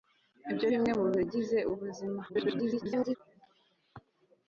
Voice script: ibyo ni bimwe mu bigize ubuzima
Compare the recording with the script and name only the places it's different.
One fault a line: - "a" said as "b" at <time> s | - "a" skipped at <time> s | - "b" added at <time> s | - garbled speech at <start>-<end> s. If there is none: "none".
- "ni" skipped at 0.7 s
- garbled speech at 2.3-3.2 s